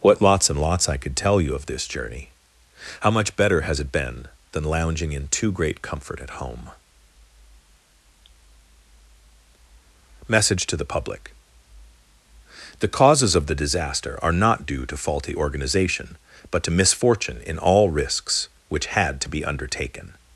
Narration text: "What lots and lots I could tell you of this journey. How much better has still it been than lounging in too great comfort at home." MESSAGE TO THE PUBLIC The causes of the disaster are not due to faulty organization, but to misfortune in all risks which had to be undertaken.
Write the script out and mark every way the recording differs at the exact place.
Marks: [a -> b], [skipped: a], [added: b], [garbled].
"What lots and lots I could tell you of this journey. How much better has [skipped: still] it been than lounging in too great comfort at home." MESSAGE TO THE PUBLIC The causes of the disaster are not due to faulty organization, but to misfortune in all risks which had to be undertaken.